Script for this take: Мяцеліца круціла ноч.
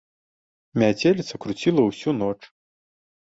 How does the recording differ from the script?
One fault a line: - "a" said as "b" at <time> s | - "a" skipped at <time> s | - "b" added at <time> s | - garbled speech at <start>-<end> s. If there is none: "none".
- "ўсю" added at 1.9 s